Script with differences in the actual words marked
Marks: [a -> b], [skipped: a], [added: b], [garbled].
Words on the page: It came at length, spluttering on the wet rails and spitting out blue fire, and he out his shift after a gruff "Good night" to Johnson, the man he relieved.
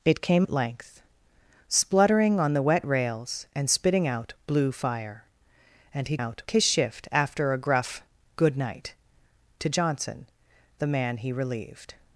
It came at length, spluttering on the wet rails and spitting out blue fire, and he out his shift after a gruff "Good night" to Johnson, the man he relieved.